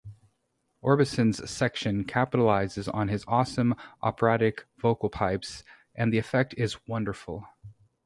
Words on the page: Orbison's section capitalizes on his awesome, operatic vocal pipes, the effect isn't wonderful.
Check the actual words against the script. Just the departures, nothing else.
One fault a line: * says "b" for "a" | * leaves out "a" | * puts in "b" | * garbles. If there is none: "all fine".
* puts in "and"
* says "is" for "isn't"